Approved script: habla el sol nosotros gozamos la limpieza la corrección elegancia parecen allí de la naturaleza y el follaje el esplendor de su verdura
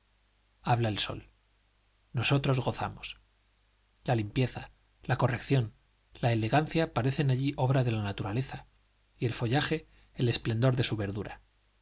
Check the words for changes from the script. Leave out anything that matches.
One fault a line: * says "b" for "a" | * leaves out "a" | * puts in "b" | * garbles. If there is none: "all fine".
* puts in "la"
* puts in "obra"